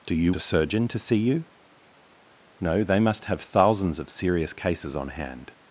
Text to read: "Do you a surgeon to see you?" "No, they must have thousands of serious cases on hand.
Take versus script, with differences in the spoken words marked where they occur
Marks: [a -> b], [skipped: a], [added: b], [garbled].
"Do you a surgeon to see you?" "No, they must have thousands of serious cases on hand.